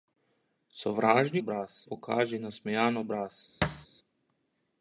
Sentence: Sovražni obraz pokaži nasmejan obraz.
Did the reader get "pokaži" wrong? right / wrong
right